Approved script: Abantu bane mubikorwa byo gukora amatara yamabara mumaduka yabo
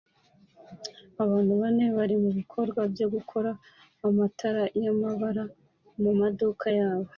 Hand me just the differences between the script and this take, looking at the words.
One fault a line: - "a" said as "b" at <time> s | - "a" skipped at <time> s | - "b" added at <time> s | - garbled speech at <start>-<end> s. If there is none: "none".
- "bari" added at 2.0 s